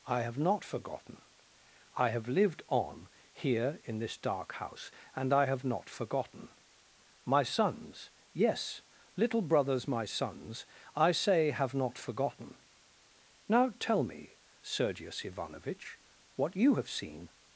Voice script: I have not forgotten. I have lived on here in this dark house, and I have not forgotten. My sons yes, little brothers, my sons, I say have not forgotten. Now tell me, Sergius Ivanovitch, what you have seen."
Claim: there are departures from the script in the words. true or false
false